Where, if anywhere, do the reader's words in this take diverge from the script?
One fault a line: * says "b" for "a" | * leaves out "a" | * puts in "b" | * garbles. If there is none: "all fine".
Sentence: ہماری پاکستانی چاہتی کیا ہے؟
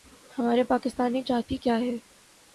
all fine